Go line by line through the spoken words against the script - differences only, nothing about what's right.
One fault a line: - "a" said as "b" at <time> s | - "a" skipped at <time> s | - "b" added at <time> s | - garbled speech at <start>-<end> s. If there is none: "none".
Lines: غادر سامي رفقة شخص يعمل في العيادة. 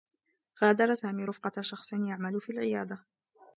none